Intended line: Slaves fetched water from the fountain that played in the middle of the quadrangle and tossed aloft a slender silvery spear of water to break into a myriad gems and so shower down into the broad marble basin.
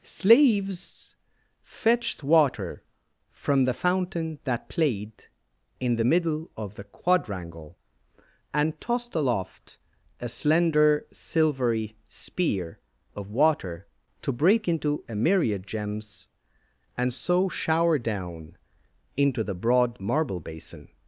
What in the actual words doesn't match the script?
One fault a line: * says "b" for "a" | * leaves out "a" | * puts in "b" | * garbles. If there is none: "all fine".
all fine